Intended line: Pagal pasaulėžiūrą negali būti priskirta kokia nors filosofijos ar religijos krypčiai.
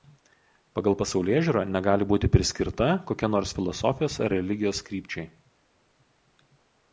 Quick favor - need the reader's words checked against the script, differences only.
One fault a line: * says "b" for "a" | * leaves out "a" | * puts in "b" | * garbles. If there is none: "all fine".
all fine